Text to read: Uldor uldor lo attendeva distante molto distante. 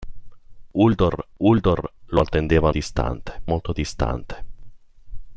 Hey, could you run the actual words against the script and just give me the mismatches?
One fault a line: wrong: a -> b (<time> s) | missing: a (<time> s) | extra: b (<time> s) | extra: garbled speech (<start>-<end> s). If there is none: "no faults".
no faults